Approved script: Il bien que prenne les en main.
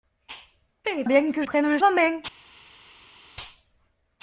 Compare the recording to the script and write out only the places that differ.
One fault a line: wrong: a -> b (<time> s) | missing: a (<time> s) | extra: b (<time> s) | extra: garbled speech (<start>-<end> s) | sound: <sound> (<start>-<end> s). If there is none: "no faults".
no faults